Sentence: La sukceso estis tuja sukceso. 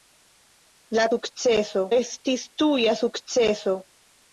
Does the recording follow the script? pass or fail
pass